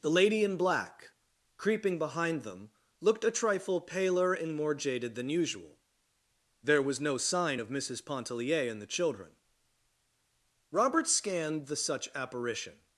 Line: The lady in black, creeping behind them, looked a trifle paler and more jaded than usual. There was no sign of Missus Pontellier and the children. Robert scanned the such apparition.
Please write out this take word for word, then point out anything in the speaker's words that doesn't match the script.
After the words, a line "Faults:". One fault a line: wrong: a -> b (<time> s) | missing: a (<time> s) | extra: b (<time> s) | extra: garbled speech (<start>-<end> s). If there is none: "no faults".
The lady in black, creeping behind them, looked a trifle paler and more jaded than usual. There was no sign of Missus Pontellier and the children. Robert scanned the such apparition.
Faults:
no faults